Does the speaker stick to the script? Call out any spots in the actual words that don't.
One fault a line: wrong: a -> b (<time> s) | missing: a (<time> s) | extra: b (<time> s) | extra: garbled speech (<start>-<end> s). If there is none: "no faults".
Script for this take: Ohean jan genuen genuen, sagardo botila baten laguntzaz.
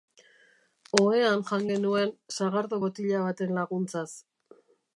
missing: genuen (2.2 s)